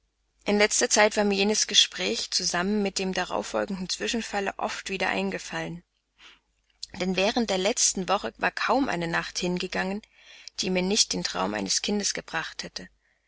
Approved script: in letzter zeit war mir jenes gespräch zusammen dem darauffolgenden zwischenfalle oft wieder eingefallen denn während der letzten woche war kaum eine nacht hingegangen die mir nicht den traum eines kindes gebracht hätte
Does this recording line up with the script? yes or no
no